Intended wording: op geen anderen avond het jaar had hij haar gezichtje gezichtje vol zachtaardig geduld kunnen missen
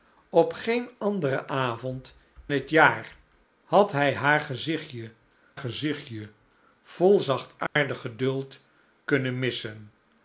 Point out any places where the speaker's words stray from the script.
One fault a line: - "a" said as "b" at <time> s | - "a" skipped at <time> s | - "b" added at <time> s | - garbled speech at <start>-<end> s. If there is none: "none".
none